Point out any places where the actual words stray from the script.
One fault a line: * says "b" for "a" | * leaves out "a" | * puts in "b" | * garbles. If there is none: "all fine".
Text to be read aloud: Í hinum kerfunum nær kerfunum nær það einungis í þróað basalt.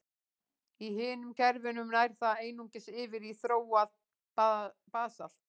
* leaves out "kerfunum nær"
* puts in "yfir"